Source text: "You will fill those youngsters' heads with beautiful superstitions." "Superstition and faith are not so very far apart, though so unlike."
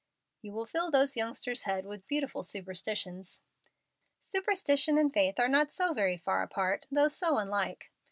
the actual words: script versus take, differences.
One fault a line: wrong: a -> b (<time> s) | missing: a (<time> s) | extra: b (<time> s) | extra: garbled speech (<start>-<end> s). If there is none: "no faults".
no faults